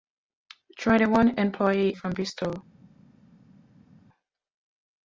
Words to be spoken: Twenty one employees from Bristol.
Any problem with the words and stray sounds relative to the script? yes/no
no